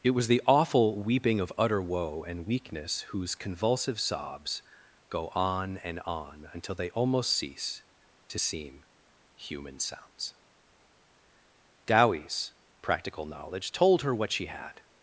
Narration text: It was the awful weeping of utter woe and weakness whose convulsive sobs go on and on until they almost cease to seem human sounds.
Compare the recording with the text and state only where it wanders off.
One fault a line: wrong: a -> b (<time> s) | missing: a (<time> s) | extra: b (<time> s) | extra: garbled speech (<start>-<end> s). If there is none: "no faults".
extra: Dowie's practical knowledge told her what she had (11.8 s)